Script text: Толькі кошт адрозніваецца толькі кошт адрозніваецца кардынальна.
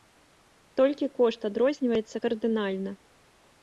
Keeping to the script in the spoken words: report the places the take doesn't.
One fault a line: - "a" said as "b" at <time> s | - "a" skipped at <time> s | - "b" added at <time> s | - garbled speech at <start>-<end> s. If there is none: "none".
- "толькі кошт адрозніваецца" skipped at 2.2 s